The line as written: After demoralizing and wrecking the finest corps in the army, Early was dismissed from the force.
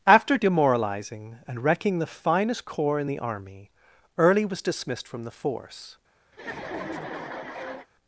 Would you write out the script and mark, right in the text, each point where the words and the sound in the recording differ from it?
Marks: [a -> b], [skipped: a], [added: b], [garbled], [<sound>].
After demoralizing and wrecking the finest corps in the army, Early was dismissed from the force. [laugh]